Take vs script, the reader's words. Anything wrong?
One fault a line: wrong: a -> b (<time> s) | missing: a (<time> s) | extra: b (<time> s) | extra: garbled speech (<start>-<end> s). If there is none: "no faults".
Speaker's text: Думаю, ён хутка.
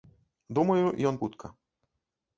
no faults